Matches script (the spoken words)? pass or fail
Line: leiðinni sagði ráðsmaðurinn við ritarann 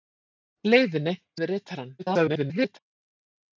fail